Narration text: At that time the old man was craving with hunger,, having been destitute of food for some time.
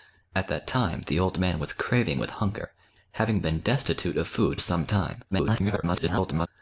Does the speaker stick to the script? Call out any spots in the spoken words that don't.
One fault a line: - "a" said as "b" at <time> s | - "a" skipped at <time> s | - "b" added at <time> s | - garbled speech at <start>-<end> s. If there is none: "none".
- "for" skipped at 4.6 s
- garbled speech at 5.3-6.5 s